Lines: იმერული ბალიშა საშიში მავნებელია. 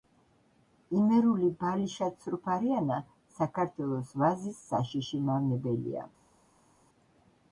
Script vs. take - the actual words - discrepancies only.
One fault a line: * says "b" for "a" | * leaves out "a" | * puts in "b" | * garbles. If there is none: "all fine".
* puts in "ცრუფარიანა საქართველოს ვაზის"